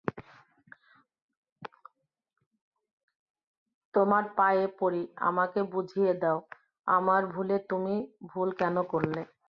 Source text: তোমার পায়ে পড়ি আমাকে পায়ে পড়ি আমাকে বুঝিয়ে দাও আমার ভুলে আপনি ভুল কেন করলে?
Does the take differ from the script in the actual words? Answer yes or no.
yes